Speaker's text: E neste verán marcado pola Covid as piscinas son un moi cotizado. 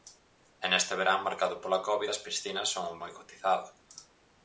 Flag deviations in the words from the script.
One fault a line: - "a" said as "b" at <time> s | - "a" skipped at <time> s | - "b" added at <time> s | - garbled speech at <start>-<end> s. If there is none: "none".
none